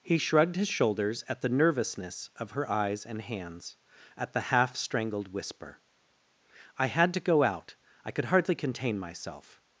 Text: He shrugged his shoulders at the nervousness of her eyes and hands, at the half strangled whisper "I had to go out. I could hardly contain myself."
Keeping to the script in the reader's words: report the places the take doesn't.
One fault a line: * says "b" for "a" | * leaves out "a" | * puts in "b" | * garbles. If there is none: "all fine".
all fine